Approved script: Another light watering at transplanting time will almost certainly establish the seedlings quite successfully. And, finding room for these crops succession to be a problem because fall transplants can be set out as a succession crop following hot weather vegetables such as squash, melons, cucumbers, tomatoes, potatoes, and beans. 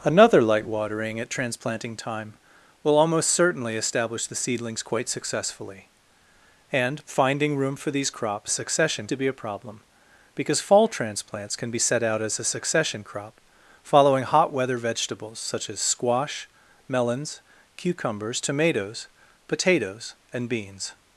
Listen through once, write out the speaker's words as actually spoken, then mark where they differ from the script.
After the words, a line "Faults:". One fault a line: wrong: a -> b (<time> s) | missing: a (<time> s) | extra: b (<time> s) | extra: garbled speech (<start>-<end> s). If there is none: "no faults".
Another light watering at transplanting time will almost certainly establish the seedlings quite successfully. And, finding room for these crops succession to be a problem because fall transplants can be set out as a succession crop following hot weather vegetables such as squash, melons, cucumbers, tomatoes, potatoes, and beans.
Faults:
no faults